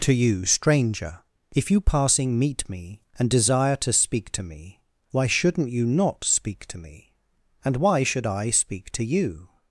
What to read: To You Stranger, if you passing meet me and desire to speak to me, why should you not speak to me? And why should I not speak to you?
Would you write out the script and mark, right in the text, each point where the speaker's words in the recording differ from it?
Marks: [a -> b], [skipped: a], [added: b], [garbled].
To You Stranger, if you passing meet me and desire to speak to me, why [should -> shouldn't] you not speak to me? And why should I [skipped: not] speak to you?